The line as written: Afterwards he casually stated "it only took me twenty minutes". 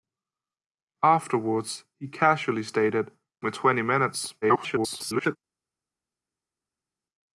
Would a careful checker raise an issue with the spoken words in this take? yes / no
yes